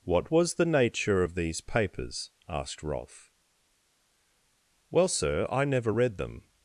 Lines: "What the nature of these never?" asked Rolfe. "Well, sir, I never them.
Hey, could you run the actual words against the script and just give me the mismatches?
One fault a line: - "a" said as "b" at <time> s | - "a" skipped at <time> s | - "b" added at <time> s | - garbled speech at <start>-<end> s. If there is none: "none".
- "was" added at 0.3 s
- "never" said as "papers" at 1.6 s
- "read" added at 5.9 s